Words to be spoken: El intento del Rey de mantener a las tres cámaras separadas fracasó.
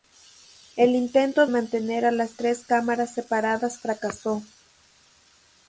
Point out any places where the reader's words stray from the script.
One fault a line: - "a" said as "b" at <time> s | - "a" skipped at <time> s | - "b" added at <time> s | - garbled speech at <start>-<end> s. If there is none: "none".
- "del Rey de" skipped at 1.4 s